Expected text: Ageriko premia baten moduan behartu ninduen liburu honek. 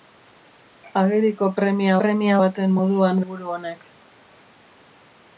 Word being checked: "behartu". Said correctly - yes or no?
no